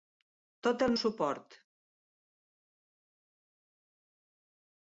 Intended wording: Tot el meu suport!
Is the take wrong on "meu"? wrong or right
wrong